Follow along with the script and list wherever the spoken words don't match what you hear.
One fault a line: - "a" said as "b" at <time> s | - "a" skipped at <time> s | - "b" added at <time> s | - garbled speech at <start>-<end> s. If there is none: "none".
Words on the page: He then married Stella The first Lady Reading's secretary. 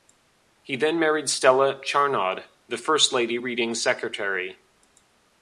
- "Charnaud" added at 1.8 s